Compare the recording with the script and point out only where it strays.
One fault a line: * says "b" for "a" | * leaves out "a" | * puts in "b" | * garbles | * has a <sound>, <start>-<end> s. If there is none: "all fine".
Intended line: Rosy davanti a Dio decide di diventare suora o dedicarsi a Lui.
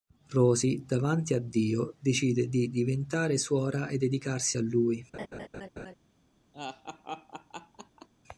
* says "e" for "o"
* has a laugh, 5.1-5.9 s
* has a laugh, 6.5-8.1 s